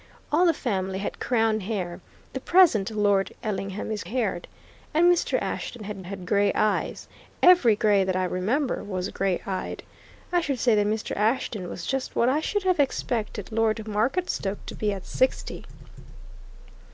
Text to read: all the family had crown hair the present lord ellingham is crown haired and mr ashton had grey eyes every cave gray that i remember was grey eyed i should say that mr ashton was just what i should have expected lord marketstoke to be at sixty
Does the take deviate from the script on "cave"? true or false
true